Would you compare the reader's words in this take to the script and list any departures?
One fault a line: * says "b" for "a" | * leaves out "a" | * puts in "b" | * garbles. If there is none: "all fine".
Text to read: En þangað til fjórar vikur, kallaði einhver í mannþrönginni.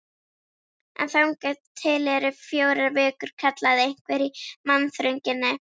* puts in "eru"